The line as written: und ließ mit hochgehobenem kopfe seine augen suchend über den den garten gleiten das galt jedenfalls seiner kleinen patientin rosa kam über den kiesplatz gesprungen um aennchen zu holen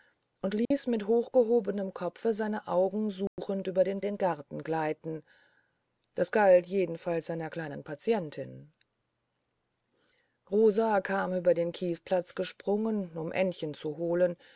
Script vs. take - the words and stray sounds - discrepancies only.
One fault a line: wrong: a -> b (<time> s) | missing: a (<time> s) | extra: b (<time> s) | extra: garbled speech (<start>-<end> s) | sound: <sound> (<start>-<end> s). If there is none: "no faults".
sound: dropout (0.7-0.7 s)
sound: dropout (3.3-3.4 s)